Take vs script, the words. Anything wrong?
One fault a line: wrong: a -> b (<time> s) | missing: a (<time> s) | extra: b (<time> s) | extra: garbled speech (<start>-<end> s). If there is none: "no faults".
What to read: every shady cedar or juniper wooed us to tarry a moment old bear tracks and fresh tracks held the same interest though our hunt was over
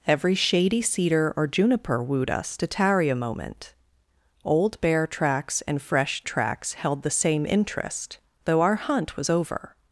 no faults